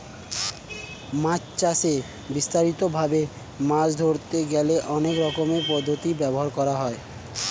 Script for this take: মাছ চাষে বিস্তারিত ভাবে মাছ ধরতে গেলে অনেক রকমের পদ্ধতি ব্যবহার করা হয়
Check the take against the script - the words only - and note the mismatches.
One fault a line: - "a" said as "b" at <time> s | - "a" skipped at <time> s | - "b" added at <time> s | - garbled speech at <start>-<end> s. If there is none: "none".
none